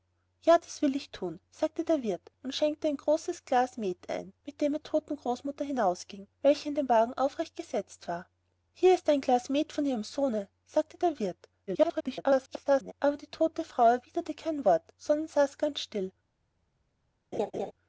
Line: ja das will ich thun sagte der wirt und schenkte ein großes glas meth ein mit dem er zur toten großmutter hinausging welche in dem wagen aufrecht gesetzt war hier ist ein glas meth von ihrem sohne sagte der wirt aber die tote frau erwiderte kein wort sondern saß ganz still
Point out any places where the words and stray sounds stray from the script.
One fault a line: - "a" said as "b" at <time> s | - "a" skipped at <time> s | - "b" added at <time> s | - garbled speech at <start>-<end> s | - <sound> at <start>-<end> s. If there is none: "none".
- "zur" skipped at 4.8 s
- garbled speech at 11.7-12.9 s
- laugh at 17.3-17.7 s